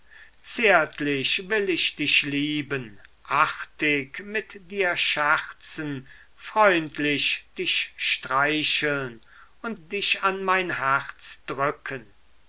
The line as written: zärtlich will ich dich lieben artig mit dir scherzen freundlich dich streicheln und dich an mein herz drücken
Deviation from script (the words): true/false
false